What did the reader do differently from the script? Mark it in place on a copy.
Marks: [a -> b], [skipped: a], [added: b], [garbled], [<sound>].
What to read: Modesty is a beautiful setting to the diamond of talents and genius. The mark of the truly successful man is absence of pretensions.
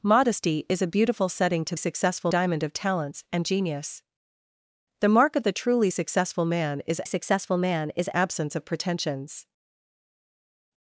Modesty is a beautiful setting to [the -> successful] diamond of talents and genius. The mark of the truly successful man is [added: successful man is] absence of pretensions.